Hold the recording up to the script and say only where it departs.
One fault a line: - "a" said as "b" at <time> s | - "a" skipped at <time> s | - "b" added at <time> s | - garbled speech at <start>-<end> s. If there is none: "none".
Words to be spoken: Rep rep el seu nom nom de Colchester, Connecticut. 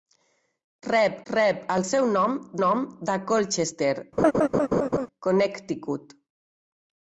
none